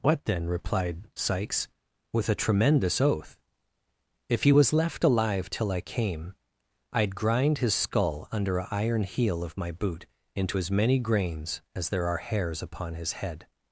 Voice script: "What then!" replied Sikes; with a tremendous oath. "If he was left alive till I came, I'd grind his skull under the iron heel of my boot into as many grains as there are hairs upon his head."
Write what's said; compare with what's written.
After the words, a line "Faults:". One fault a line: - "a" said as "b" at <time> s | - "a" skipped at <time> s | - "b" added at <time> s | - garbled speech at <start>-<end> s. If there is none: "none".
"What then!" replied Sikes; with a tremendous oath. "If he was left alive till I came, I'd grind his skull under a iron heel of my boot into as many grains as there are hairs upon his head."
Faults:
- "the" said as "a" at 8.6 s